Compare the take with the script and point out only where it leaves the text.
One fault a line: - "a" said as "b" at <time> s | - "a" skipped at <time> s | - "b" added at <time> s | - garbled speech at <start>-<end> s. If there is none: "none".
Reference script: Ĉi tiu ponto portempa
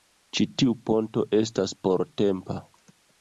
- "estas" added at 1.4 s